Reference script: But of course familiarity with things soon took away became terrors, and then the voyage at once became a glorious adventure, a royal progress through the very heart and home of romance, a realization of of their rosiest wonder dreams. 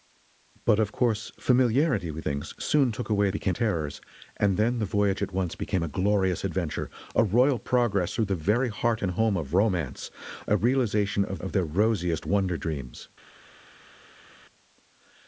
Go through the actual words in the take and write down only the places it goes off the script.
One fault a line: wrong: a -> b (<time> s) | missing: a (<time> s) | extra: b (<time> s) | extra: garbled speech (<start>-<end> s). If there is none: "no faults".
no faults